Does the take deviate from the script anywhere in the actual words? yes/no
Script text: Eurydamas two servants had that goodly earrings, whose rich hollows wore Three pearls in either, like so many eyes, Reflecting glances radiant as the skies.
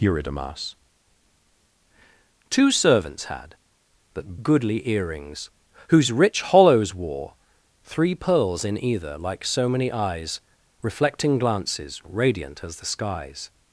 no